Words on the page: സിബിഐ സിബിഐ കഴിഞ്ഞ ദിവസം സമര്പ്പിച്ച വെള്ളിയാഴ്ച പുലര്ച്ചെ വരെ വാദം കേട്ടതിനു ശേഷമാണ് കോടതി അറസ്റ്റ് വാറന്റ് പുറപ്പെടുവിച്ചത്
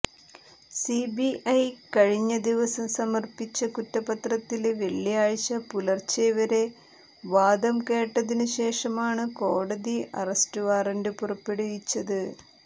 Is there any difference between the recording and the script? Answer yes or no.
yes